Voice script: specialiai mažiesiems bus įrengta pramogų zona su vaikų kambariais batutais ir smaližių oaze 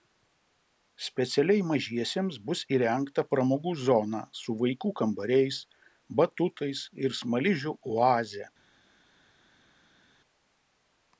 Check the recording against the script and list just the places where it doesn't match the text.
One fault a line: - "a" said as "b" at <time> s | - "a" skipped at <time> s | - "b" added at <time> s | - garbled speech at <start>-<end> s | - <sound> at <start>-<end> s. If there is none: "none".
none